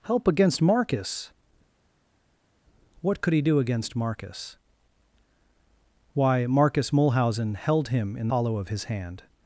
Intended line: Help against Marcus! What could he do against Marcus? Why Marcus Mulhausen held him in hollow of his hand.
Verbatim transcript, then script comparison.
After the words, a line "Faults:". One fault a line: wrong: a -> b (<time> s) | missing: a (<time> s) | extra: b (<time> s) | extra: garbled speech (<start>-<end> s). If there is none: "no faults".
Help against Marcus! What could he do against Marcus? Why Marcus Mulhausen held him in hollow of his hand.
Faults:
no faults